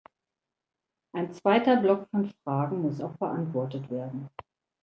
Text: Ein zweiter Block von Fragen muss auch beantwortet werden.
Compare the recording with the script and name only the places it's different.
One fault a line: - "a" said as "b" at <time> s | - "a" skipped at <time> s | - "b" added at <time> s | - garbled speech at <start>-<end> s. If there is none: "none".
none